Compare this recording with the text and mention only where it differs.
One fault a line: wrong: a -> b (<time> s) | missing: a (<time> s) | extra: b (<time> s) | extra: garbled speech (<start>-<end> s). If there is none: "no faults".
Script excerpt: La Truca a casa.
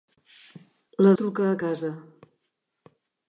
no faults